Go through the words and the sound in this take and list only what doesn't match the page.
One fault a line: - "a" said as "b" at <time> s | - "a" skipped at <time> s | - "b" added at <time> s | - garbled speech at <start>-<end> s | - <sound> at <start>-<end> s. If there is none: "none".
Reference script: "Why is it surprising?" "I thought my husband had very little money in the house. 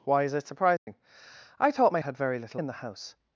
- dropout at 0.8-0.9 s
- "husband" skipped at 2.0 s
- "money" skipped at 2.6 s